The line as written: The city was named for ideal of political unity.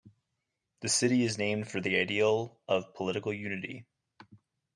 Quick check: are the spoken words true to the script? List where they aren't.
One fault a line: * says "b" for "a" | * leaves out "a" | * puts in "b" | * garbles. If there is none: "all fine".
* says "is" for "was"
* puts in "the"